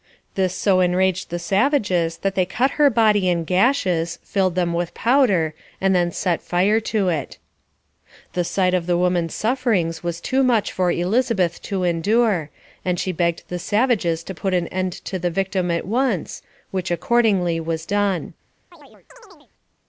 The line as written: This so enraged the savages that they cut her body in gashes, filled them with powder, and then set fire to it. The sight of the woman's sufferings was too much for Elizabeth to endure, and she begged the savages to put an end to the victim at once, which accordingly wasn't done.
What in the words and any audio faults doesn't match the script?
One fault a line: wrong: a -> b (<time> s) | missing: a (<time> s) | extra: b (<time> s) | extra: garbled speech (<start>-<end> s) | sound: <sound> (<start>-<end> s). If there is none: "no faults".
wrong: wasn't -> was (17.6 s)
sound: chirp (18.7-19.5 s)